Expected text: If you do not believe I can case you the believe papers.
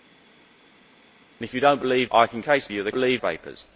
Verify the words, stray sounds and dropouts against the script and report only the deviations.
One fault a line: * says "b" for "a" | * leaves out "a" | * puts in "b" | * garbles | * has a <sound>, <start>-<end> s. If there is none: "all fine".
all fine